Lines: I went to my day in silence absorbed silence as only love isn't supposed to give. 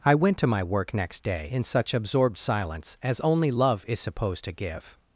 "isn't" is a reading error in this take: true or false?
true